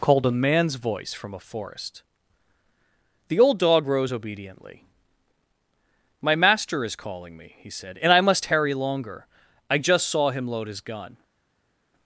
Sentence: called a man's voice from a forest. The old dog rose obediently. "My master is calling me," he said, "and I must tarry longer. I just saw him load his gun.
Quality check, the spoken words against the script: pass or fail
pass